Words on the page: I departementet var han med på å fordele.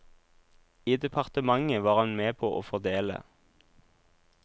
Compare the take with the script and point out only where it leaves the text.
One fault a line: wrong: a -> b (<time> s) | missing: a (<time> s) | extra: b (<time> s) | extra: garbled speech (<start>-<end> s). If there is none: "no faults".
no faults